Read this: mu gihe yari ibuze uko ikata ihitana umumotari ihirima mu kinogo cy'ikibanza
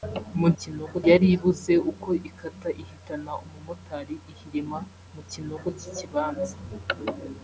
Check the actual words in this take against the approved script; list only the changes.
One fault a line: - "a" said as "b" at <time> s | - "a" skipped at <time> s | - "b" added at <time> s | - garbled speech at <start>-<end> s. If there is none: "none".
- "gihe" said as "kinogo" at 0.6 s